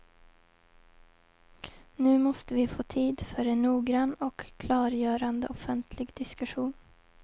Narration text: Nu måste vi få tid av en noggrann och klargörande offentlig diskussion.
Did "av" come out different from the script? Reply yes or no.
yes